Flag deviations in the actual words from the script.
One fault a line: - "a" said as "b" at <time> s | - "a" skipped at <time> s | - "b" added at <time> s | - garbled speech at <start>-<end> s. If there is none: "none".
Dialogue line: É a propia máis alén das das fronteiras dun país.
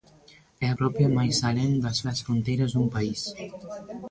none